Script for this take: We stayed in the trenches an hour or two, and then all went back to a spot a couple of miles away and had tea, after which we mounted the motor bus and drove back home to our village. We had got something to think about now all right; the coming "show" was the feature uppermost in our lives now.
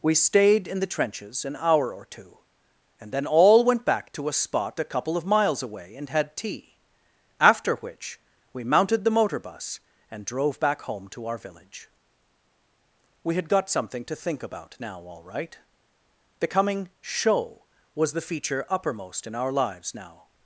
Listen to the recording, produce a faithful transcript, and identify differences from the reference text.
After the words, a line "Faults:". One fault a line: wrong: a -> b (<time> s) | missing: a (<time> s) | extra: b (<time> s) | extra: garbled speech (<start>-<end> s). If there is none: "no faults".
We stayed in the trenches an hour or two, and then all went back to a spot a couple of miles away and had tea, after which we mounted the motor bus and drove back home to our village. We had got something to think about now all right; the coming "show" was the feature uppermost in our lives now.
Faults:
no faults